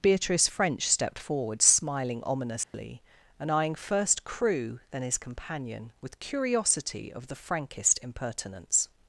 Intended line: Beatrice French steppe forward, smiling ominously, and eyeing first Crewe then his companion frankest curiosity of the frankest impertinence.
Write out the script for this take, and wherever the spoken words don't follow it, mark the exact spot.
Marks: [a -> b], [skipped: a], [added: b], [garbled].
Beatrice French [steppe -> stepped] forward, smiling ominously, and eyeing first Crewe then his companion [frankest -> with] curiosity of the frankest impertinence.